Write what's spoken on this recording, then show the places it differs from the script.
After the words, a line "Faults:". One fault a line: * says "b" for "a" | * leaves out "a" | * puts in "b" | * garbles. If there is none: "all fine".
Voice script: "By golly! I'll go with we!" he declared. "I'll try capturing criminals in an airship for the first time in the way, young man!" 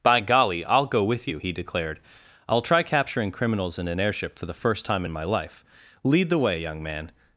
"By golly! I'll go with you!" he declared. "I'll try capturing criminals in an airship for the first time in my life! Lead the way, young man!"
Faults:
* says "you" for "we"
* puts in "my life Lead"